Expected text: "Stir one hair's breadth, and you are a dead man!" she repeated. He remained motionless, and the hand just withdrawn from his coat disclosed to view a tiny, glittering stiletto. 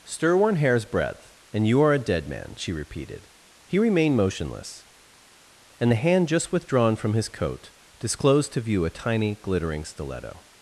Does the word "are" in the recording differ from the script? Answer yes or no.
no